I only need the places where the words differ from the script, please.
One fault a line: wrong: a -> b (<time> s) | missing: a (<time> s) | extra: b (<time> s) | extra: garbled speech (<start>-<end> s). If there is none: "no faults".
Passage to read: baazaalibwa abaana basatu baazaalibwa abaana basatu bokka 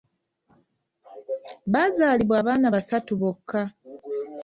missing: baazaalibwa abaana basatu (3.1 s)